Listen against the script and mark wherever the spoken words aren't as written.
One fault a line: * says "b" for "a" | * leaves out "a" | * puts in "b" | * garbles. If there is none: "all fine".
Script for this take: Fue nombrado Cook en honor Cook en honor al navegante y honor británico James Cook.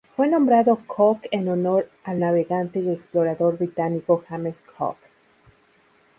* leaves out "Cook en honor"
* says "explorador" for "honor"